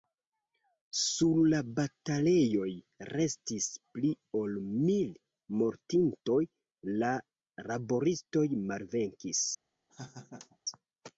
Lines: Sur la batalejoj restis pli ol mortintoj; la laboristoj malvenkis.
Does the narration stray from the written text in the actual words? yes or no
yes